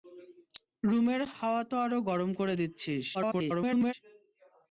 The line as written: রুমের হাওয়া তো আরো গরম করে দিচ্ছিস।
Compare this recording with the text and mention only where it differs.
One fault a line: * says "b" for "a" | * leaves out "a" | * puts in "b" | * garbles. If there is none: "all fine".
* garbles